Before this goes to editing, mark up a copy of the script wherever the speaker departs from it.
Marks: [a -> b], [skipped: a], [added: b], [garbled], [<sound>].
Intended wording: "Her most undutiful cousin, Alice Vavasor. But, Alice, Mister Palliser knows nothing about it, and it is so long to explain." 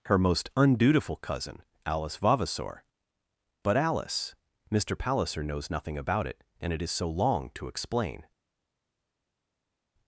"Her most undutiful cousin, Alice Vavasor. But, Alice, Mister Palliser knows nothing about it, and it is so long to explain."